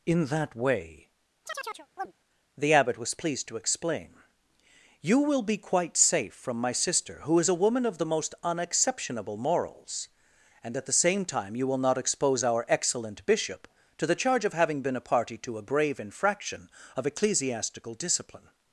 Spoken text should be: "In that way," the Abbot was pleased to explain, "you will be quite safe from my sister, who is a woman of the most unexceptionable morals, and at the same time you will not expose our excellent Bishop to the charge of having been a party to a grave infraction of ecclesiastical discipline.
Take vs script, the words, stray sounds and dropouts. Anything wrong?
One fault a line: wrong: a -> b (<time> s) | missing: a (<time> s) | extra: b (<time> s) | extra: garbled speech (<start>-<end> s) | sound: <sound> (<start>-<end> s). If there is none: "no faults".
sound: chirp (1.5-2.1 s)